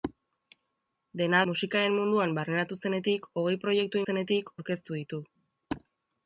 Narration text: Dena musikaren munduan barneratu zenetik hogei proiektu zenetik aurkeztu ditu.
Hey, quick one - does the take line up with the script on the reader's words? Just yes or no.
yes